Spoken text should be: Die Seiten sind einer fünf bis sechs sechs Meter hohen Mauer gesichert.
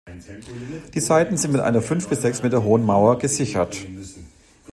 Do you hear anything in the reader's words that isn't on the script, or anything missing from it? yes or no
yes